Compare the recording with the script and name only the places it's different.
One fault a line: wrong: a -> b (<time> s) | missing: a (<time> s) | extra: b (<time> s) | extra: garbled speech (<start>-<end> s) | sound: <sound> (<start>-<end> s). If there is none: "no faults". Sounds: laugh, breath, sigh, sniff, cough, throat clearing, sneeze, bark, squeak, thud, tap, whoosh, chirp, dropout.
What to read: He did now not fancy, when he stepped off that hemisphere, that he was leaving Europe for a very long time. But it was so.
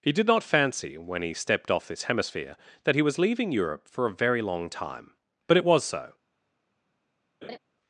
missing: now (0.2 s)
wrong: that -> this (1.9 s)
sound: laugh (7.4-7.6 s)